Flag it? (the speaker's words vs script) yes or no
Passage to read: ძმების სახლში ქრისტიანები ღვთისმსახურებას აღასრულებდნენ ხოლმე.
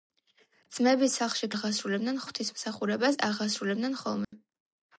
yes